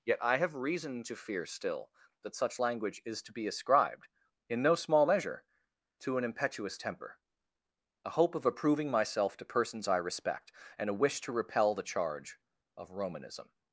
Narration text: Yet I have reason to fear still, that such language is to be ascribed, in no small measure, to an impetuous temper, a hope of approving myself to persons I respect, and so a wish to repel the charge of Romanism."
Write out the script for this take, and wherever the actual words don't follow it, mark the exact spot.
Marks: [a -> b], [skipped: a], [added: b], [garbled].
Yet I have reason to fear still, that such language is to be ascribed, in no small measure, to an impetuous temper, a hope of approving myself to persons I respect, and [skipped: so] a wish to repel the charge of Romanism."